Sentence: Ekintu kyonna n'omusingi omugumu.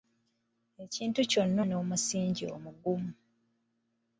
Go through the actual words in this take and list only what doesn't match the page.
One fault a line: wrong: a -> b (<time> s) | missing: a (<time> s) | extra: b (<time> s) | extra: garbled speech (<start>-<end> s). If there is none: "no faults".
no faults